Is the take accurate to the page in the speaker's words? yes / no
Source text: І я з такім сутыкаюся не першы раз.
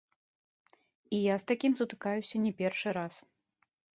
yes